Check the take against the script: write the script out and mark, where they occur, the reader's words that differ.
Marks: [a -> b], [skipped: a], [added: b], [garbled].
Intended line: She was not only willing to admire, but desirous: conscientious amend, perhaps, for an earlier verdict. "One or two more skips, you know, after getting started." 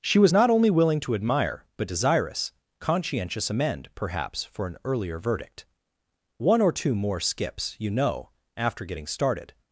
She was not only willing to admire, but desirous: conscientious amend, perhaps, for an earlier verdict. "One or two more skips, you know, after getting started."